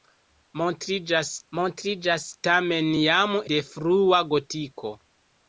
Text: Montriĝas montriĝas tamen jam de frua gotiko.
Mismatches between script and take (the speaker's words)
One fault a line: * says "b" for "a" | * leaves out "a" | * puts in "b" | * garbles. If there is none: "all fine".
all fine